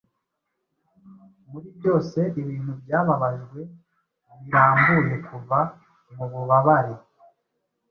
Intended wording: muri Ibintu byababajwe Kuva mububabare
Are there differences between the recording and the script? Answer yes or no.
yes